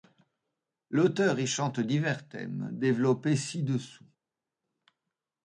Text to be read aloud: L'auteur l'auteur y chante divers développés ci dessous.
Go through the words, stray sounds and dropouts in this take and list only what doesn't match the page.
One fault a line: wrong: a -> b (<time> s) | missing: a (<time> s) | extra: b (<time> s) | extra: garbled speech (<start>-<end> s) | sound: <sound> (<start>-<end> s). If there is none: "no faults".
missing: l'auteur (1.4 s)
extra: thèmes (2.3 s)